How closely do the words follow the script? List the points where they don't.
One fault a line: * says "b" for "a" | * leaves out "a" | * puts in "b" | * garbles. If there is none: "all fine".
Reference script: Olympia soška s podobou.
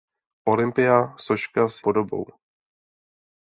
all fine